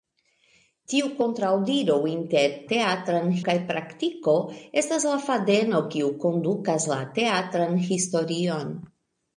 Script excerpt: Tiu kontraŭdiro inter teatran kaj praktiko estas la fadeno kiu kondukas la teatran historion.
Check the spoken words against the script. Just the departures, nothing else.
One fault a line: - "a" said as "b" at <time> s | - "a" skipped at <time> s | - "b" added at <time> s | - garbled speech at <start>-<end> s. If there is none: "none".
none